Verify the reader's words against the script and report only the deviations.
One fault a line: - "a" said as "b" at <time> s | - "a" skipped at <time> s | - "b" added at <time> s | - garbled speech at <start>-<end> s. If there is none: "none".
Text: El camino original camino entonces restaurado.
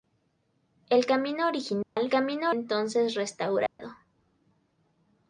none